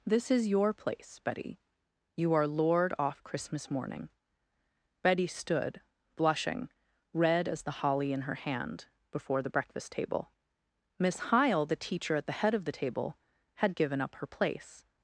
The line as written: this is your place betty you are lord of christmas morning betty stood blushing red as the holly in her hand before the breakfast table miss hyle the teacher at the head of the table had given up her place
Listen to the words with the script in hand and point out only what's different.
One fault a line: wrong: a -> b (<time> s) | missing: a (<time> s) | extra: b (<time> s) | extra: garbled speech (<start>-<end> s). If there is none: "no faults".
wrong: of -> off (3.0 s)